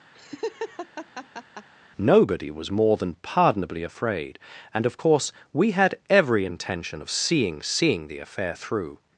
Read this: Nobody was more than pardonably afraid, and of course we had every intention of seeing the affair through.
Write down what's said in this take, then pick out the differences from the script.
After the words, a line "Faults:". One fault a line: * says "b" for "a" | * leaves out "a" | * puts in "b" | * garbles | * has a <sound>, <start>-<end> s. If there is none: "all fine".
Nobody was more than pardonably afraid, and of course we had every intention of seeing seeing the affair through.
Faults:
* has a laugh, 0.1-1.7 s
* puts in "seeing"